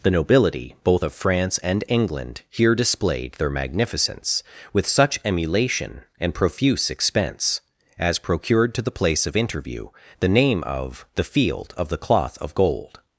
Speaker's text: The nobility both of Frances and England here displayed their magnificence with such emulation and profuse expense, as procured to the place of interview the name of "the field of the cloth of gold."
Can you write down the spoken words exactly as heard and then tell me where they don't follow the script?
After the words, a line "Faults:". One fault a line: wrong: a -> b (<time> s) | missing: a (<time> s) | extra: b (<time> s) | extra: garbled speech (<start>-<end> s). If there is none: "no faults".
The nobility both of France and England here displayed their magnificence with such emulation and profuse expense, as procured to the place of interview the name of "the field of the cloth of gold."
Faults:
wrong: Frances -> France (1.1 s)